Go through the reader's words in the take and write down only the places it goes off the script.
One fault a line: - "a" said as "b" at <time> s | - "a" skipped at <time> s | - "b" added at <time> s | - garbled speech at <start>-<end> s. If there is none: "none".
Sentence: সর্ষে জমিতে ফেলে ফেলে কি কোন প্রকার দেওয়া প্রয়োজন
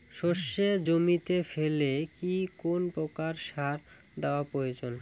- "ফেলে" skipped at 1.9 s
- "সার" added at 3.5 s